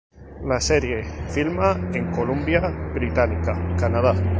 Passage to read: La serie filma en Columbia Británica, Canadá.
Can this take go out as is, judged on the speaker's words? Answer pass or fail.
pass